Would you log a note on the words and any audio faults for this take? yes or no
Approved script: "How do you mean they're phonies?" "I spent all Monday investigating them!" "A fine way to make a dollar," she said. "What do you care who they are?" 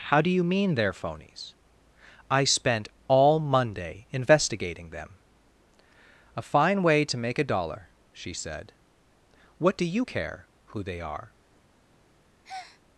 yes